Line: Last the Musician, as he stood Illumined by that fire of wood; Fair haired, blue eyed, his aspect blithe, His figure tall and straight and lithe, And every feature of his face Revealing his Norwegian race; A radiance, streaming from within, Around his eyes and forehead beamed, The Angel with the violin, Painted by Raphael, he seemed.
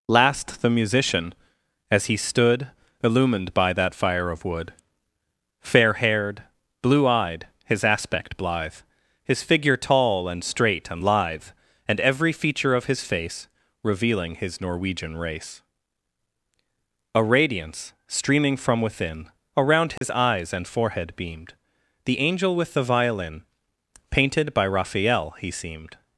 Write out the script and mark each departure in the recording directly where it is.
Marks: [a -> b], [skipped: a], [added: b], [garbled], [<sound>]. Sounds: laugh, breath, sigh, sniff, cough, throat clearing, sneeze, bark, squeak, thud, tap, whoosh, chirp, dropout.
Last the Musician, as he stood Illumined by that fire of wood; Fair haired, blue eyed, his aspect blithe, His figure tall and straight and lithe, And every feature of his face Revealing his Norwegian race; A radiance, streaming from within, Around his [dropout] eyes and forehead beamed, The Angel with the violin, Painted by Raphael, he seemed.